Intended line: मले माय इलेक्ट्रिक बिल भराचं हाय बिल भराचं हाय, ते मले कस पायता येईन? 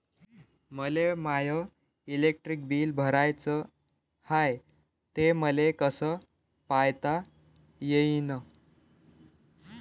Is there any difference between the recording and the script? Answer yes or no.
yes